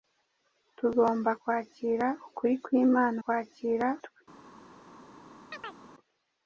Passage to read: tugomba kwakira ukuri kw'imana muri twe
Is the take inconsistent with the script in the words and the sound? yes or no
yes